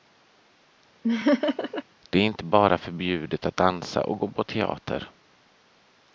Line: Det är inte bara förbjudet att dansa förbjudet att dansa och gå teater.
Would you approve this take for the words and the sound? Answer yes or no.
no